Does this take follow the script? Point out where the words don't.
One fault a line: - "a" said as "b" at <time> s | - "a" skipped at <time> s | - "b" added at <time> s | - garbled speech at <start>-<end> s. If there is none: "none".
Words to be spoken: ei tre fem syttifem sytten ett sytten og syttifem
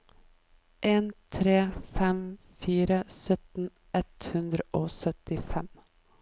- "ei" said as "en" at 0.8 s
- "syttifem" said as "fire" at 2.6 s
- "sytten" said as "hundre" at 4.3 s